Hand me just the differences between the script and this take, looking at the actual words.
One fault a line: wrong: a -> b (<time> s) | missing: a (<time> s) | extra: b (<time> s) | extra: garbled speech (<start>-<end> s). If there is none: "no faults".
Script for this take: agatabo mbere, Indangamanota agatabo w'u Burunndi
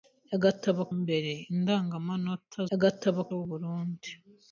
no faults